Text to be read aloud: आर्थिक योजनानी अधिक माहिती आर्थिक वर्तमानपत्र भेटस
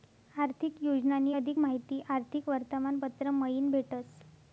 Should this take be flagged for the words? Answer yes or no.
yes